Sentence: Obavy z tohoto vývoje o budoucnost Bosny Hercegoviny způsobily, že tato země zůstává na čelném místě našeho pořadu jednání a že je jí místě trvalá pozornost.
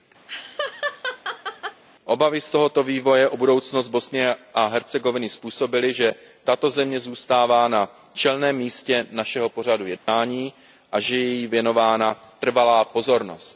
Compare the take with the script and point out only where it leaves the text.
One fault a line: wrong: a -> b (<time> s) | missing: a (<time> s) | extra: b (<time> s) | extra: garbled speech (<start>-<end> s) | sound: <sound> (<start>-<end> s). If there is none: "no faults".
sound: laugh (0.3-1.8 s)
extra: a (4.5 s)
sound: dropout (10.0-10.1 s)
wrong: místě -> věnována (11.5 s)